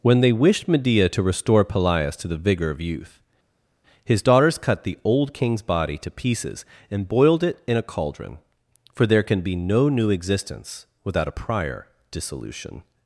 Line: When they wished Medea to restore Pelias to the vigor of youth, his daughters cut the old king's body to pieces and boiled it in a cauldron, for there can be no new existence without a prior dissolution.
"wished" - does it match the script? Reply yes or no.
yes